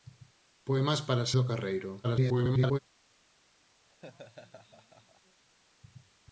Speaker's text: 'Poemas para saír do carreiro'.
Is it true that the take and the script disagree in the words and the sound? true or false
true